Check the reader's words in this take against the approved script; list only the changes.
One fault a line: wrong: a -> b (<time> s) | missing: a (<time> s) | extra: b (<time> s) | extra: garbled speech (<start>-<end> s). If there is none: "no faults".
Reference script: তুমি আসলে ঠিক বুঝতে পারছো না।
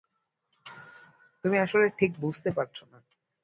no faults